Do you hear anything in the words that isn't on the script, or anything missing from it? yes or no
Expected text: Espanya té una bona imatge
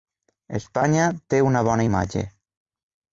no